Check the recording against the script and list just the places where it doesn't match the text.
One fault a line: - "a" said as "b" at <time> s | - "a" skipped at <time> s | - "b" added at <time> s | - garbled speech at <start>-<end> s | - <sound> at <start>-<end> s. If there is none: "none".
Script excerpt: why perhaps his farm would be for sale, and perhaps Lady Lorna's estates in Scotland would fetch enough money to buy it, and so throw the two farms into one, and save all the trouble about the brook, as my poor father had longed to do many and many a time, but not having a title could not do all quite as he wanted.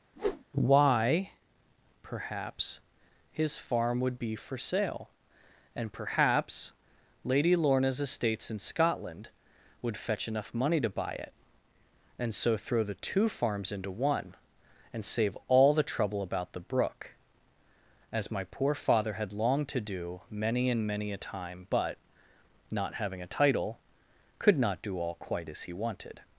- whoosh at 0.2-0.4 s